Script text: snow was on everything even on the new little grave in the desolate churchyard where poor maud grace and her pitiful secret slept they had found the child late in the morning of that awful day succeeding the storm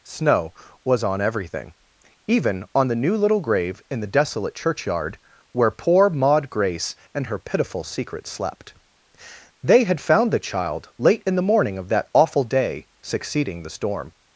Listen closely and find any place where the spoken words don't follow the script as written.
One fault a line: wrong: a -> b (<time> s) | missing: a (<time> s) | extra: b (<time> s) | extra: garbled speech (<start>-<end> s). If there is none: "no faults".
no faults